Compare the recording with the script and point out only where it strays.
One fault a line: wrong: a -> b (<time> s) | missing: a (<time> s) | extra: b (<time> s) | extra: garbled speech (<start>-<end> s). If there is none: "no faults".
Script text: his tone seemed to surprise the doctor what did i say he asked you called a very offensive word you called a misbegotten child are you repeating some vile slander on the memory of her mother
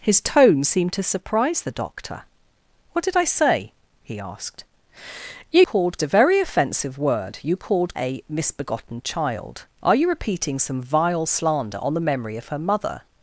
no faults